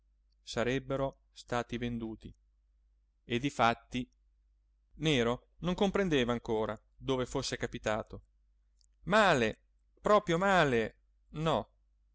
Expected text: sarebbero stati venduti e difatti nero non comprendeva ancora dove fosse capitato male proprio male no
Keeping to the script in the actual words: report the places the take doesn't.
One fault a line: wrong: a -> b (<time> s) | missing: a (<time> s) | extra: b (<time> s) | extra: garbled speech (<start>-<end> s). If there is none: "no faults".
no faults